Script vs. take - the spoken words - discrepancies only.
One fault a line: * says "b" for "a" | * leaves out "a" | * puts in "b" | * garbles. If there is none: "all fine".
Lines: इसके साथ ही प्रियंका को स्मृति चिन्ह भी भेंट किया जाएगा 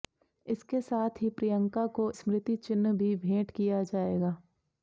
all fine